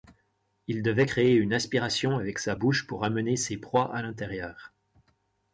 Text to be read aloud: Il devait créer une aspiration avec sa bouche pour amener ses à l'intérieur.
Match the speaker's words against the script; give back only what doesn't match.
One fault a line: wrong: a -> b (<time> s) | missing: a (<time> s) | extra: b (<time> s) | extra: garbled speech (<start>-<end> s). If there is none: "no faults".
extra: proies (3.6 s)